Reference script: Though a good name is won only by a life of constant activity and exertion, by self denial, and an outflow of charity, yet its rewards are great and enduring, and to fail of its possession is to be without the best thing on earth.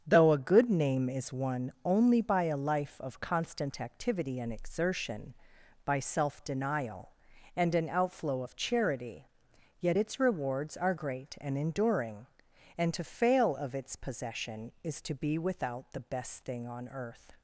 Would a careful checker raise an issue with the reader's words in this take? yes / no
no